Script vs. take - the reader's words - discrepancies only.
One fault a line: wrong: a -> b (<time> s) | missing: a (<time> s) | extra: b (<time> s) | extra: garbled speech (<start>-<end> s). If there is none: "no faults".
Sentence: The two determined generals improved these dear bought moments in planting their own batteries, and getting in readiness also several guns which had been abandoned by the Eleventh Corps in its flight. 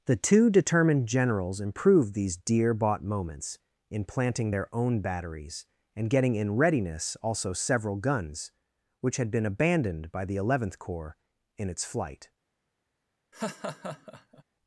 no faults